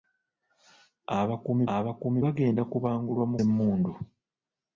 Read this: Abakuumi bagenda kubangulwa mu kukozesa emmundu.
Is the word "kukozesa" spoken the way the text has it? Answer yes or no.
no